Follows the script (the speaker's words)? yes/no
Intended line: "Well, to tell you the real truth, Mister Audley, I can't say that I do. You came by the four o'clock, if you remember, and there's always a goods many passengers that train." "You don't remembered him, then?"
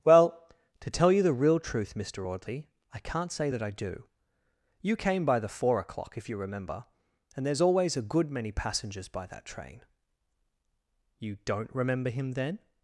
no